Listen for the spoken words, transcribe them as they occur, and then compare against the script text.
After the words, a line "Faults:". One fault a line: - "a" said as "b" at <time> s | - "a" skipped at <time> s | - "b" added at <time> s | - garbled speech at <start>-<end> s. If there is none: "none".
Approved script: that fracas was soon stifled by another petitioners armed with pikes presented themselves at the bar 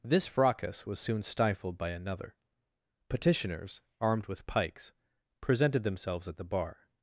this fracas was soon stifled by another petitioners armed with pikes presented themselves at the bar
Faults:
- "that" said as "this" at 0.0 s